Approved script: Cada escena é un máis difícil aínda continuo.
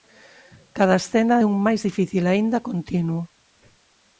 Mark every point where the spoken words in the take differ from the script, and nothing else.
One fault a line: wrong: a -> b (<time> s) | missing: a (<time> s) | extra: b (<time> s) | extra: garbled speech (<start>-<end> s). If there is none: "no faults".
no faults